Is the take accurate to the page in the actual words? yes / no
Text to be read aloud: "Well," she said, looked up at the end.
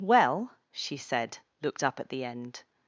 yes